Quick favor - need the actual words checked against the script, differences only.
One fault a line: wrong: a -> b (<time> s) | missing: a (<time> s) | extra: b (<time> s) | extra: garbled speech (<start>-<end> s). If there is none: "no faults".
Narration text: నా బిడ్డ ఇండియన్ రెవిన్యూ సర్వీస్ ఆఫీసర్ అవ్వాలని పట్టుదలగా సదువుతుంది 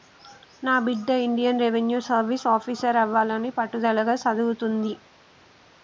no faults